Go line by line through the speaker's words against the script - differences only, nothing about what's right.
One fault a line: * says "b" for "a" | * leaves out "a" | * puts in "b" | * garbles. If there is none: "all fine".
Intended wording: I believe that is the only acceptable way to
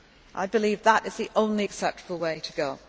all fine